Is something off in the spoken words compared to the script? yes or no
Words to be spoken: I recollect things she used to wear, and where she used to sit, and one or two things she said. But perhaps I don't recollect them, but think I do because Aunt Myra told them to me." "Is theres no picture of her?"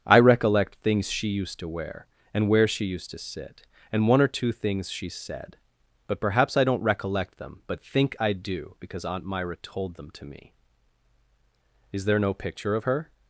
yes